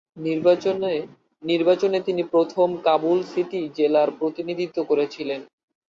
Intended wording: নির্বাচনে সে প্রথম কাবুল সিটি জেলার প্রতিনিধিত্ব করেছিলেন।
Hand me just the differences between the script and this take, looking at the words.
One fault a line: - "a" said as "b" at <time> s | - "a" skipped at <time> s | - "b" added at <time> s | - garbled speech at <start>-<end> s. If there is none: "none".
- "সে" said as "তিনি" at 2.1 s